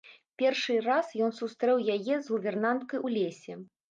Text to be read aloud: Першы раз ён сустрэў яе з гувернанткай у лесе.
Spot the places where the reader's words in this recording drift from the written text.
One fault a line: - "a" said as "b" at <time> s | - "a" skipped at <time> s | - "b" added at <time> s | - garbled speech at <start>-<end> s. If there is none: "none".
none